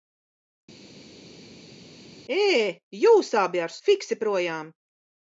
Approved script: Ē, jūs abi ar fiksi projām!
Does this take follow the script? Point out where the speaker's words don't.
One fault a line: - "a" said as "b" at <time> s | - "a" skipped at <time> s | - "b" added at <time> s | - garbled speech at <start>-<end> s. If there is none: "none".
none